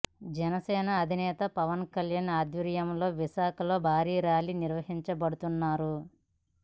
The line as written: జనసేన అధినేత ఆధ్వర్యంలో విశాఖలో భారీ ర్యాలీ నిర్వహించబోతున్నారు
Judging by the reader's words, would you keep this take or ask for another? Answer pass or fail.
fail